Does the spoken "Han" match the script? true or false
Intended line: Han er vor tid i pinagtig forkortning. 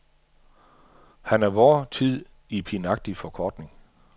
true